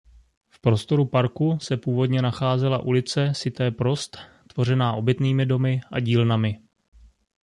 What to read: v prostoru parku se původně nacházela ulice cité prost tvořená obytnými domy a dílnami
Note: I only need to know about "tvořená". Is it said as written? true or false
true